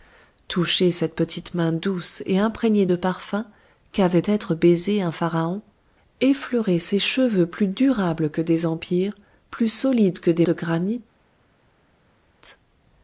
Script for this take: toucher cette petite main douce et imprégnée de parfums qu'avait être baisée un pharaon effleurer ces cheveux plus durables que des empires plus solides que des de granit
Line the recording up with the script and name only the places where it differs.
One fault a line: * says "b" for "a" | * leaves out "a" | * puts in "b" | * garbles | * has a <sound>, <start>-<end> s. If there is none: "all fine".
all fine